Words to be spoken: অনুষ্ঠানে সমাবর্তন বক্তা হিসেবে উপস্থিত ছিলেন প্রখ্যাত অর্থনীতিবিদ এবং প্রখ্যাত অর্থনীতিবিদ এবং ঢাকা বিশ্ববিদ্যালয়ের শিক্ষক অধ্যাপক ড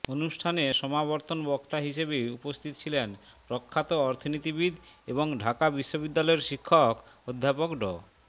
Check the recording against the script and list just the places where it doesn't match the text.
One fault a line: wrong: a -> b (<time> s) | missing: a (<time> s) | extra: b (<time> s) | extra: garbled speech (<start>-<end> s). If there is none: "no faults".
missing: প্রখ্যাত অর্থনীতিবিদ এবং (5.3 s)